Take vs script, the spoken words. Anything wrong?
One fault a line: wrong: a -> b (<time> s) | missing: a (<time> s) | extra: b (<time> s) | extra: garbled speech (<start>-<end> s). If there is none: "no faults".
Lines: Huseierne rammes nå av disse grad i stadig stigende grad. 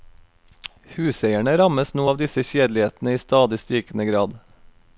wrong: grad -> kjedelighetene (2.5 s)